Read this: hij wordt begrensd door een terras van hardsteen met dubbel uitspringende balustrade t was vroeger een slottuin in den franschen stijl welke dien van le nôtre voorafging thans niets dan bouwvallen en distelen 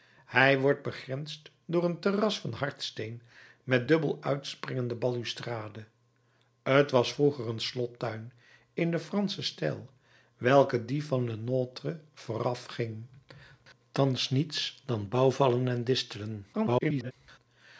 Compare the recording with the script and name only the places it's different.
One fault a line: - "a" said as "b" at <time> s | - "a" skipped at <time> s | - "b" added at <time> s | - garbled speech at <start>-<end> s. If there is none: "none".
- garbled speech at 16.5-17.1 s